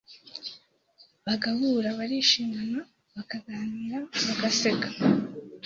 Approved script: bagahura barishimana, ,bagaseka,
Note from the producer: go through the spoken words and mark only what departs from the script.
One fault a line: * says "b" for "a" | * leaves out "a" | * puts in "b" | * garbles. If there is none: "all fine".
* puts in "bakaganira"